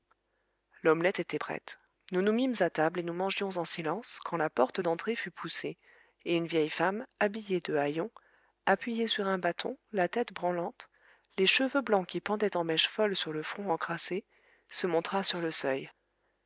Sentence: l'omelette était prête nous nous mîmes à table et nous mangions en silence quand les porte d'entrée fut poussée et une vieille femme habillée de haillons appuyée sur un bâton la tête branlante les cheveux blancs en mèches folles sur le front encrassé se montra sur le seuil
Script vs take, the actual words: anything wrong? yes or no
yes